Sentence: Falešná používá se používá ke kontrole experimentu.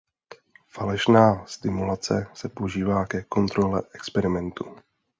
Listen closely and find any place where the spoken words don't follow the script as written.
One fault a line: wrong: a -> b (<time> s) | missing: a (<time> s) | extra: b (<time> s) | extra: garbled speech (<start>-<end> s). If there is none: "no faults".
wrong: používá -> stimulace (1.4 s)